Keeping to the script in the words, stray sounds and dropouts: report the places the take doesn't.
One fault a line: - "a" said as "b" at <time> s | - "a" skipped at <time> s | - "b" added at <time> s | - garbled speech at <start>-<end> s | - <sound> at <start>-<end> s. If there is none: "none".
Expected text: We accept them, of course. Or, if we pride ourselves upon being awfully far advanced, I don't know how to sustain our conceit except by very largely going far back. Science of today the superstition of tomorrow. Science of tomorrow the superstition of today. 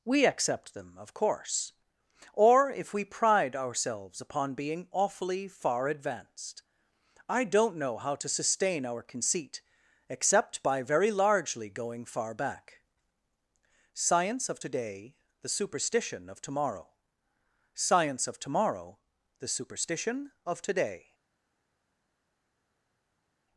none